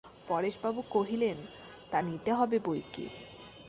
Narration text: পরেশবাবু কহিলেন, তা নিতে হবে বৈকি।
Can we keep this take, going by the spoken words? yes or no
yes